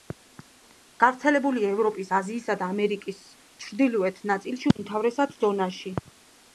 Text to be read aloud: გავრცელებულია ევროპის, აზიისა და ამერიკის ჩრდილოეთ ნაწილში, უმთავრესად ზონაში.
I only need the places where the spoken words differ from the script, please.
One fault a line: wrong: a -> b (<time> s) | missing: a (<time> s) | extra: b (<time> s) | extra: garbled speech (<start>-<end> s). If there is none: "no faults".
no faults